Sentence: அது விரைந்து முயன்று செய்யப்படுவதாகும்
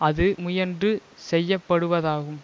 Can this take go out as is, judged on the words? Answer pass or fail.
fail